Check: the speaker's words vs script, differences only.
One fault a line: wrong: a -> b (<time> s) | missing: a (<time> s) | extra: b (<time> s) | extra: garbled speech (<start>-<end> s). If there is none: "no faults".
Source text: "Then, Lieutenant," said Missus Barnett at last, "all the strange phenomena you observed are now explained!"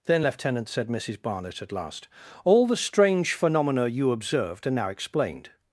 no faults